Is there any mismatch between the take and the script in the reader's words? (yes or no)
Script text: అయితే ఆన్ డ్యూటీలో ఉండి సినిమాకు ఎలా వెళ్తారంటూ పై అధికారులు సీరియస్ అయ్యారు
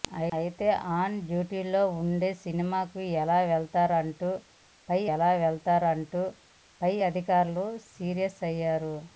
yes